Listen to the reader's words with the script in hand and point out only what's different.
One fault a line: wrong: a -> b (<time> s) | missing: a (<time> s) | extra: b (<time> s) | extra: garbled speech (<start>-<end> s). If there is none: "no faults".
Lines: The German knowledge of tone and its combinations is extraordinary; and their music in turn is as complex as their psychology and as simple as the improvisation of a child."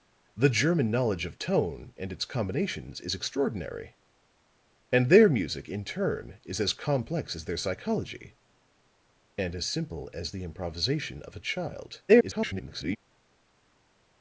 extra: garbled speech (12.1-13.0 s)